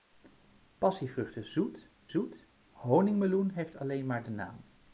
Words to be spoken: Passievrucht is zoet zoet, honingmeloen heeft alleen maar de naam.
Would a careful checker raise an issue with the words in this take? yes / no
no